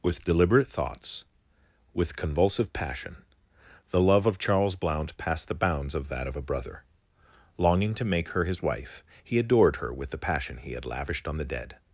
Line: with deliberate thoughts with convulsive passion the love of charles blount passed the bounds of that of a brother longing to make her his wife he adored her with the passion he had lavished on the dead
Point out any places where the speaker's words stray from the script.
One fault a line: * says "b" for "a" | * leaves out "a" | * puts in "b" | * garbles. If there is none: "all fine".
all fine